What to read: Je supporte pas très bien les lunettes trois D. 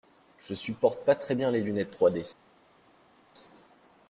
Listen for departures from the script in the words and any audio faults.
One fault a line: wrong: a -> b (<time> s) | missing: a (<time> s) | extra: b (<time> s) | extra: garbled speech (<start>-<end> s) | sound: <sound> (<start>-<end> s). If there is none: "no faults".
no faults